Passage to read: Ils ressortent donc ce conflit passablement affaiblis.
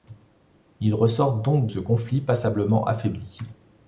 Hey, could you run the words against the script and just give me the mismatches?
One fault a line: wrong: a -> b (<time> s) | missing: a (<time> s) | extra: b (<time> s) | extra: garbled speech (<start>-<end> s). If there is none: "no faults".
no faults